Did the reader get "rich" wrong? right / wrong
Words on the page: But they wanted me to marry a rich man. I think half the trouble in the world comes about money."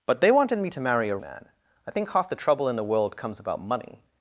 wrong